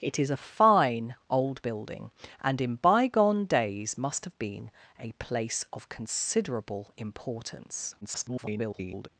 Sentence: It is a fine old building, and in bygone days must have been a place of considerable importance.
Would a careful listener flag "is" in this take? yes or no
no